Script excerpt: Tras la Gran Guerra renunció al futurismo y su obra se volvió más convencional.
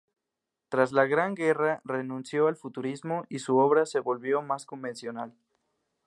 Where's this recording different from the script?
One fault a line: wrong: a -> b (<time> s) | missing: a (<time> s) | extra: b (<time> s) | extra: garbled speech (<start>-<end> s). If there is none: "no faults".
no faults